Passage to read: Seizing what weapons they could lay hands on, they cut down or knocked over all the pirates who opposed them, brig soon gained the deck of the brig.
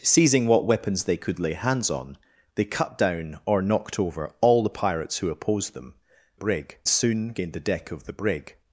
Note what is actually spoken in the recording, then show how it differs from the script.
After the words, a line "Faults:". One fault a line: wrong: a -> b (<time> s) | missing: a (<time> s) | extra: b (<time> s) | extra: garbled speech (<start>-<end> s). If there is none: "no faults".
Seizing what weapons they could lay hands on, they cut down or knocked over all the pirates who opposed them, brig soon gained the deck of the brig.
Faults:
no faults